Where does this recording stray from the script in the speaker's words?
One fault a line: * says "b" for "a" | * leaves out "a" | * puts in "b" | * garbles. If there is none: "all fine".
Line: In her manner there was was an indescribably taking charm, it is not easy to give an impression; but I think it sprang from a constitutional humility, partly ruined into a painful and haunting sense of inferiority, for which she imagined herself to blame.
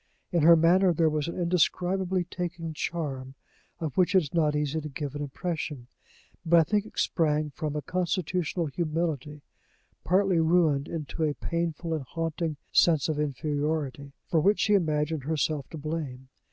* leaves out "was"
* puts in "of which"